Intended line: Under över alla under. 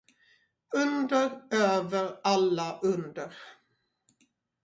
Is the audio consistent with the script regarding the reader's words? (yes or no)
yes